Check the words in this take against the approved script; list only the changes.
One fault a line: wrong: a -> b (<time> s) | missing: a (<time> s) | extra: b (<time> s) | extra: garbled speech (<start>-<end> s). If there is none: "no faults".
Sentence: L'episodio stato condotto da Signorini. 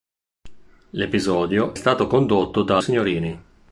no faults